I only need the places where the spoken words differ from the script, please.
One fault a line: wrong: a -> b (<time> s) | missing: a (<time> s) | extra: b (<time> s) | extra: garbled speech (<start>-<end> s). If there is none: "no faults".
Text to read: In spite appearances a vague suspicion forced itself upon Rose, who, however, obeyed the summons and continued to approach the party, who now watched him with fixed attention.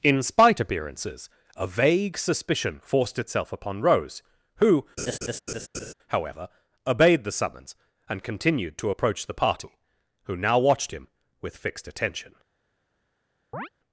no faults